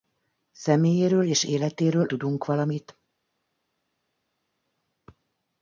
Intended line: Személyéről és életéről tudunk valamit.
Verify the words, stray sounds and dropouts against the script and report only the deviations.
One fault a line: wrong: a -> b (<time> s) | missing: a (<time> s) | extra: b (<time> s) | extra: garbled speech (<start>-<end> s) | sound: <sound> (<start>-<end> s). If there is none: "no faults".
no faults